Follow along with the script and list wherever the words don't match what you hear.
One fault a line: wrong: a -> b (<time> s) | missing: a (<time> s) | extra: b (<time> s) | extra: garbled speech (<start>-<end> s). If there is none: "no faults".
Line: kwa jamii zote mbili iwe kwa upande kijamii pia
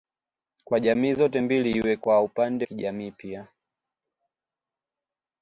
no faults